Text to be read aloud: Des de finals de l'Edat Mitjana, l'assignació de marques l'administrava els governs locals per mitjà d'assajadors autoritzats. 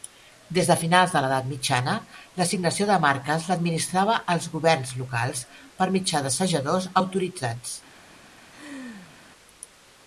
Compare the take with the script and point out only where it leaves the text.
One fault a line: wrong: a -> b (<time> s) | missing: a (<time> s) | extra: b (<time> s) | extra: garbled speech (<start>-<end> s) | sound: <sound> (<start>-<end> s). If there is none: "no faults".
sound: laugh (8.5-9.2 s)